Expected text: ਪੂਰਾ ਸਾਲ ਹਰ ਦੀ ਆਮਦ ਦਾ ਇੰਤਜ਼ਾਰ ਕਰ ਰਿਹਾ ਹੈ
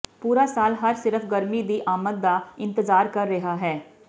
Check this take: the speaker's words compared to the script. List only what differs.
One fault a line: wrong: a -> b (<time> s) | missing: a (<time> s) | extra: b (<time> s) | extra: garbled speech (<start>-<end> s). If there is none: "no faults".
extra: ਸਿਰਫ ਗਰਮੀ (0.9 s)